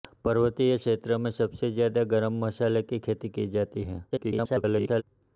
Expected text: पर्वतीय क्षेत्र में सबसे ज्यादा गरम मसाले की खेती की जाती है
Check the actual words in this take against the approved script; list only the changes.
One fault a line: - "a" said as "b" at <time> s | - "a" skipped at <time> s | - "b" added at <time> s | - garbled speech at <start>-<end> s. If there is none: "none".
- garbled speech at 4.1-5.0 s